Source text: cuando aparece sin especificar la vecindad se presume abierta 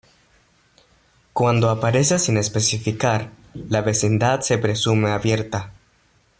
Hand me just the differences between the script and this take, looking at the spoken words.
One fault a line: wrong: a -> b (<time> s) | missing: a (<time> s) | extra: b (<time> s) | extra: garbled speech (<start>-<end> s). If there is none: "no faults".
no faults